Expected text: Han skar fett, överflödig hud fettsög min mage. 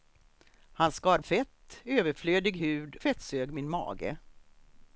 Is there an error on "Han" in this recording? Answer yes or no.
no